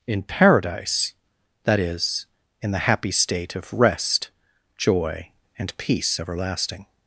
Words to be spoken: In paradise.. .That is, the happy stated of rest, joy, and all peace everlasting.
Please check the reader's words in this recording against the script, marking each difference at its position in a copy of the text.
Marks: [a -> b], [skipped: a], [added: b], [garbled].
In paradise.. .That is, [added: in] the happy [stated -> state] of rest, joy, and [skipped: all] peace everlasting.